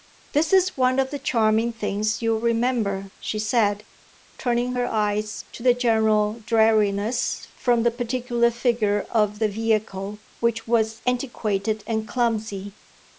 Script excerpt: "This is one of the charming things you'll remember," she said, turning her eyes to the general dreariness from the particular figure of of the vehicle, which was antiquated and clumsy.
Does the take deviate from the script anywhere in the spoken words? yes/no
yes